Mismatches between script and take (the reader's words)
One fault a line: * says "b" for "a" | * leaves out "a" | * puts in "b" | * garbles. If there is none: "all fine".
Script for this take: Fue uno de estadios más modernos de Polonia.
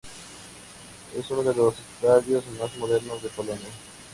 * says "Es" for "Fue"
* puts in "los"